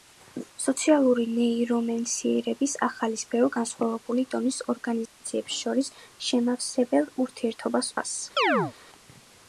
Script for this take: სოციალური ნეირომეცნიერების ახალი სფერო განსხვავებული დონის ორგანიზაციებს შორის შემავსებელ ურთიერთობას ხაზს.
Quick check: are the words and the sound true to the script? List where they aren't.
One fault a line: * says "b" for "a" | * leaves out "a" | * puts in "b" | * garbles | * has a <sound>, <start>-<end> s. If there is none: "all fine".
* has a dropout, 5.1-5.2 s
* has a chirp, 8.4-8.7 s